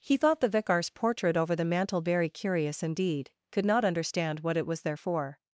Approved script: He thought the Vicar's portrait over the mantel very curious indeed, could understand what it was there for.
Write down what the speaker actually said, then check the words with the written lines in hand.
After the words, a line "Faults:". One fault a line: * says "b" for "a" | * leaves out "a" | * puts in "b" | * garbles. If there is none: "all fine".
He thought the Vicar's portrait over the mantel very curious indeed, could not understand what it was there for.
Faults:
* puts in "not"